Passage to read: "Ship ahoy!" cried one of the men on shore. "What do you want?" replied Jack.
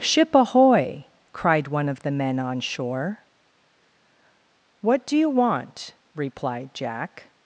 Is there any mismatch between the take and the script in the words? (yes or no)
no